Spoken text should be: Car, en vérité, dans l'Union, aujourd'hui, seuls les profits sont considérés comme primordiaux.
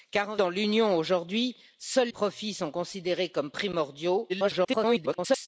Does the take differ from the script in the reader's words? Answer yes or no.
yes